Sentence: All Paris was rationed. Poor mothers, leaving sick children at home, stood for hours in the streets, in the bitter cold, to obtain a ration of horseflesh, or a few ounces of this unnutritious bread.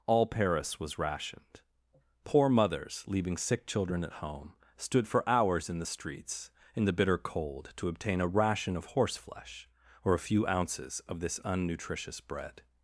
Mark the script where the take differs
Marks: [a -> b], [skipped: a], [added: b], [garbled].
All Paris was rationed. Poor mothers, leaving sick children at home, stood for hours in the streets, in the bitter cold, to obtain a ration of horseflesh, or a few ounces of this unnutritious bread.